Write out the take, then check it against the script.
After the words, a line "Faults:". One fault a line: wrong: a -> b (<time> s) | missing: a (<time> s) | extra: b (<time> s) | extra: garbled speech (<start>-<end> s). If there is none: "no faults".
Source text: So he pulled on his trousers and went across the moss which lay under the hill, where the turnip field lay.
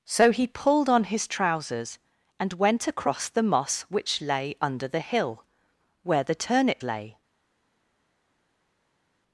So he pulled on his trousers and went across the moss which lay under the hill, where the turnip lay.
Faults:
missing: field (6.8 s)